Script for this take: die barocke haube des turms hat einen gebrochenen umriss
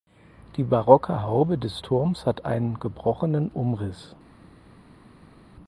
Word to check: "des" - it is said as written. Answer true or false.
true